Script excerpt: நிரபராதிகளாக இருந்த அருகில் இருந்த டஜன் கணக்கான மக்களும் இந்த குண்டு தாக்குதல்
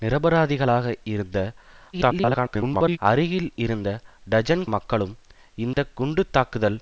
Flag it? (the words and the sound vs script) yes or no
yes